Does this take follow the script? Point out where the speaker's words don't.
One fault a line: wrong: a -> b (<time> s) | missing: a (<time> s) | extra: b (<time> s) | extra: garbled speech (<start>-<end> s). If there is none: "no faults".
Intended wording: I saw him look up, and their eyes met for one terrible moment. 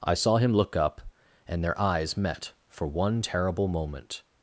no faults